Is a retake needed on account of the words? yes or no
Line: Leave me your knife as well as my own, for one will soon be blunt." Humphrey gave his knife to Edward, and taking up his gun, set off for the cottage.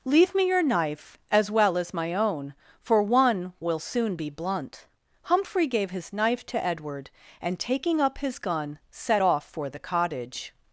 no